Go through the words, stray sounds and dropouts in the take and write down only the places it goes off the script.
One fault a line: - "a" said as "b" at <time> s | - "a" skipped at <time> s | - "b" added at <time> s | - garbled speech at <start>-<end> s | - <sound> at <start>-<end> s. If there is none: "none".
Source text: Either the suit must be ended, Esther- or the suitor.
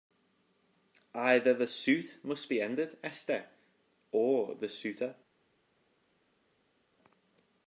none